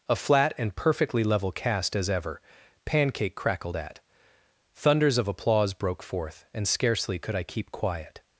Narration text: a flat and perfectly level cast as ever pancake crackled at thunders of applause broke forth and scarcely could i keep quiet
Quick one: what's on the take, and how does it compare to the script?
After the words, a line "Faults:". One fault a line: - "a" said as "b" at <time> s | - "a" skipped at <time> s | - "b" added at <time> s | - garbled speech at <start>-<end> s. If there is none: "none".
a flat and perfectly level cast as ever pancake crackled at thunders of applause broke forth and scarcely could i keep quiet
Faults:
none